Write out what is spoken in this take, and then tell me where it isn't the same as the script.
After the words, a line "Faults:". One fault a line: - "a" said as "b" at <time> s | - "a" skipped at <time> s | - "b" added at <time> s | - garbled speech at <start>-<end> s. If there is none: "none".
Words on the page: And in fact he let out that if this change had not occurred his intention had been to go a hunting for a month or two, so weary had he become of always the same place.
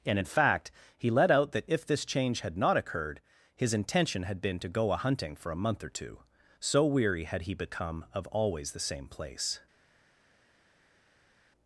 And in fact he let out that if this change had not occurred his intention had been to go a hunting for a month or two, so weary had he become of always the same place.
Faults:
none